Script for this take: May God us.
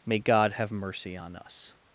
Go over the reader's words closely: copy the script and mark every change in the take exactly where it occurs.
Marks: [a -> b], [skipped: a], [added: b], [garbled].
May God [added: have mercy on] us.